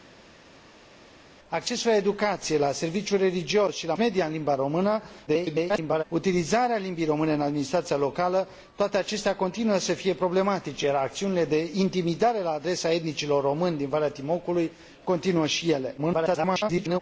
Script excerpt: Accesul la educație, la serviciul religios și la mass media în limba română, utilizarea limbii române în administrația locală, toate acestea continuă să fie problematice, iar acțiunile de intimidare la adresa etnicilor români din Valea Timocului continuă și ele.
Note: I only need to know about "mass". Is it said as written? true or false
false